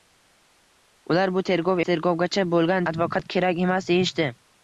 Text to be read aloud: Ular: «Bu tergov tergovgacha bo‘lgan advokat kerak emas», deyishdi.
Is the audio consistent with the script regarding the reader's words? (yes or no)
yes